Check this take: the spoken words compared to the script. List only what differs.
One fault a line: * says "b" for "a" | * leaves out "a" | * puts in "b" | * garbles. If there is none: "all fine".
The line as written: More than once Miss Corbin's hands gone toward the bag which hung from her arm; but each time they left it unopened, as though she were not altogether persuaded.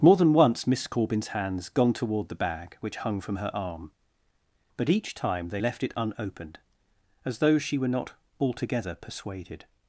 all fine